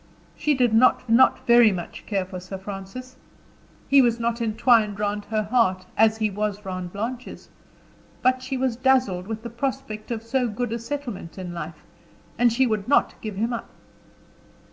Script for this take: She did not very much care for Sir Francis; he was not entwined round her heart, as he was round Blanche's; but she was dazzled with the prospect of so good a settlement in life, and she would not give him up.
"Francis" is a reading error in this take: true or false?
false